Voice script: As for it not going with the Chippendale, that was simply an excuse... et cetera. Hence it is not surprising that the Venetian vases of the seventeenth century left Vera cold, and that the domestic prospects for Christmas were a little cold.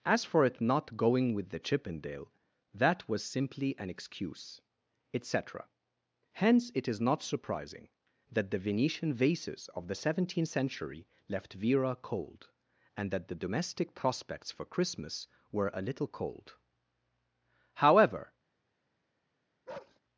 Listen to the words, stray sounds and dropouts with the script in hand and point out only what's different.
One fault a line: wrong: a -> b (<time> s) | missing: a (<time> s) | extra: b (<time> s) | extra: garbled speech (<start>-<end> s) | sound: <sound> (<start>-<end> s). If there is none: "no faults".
extra: However (17.7 s)
sound: bark (19.7-20.0 s)